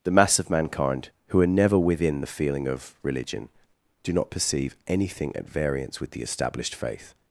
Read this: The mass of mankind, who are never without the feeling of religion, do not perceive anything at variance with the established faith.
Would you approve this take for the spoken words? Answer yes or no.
no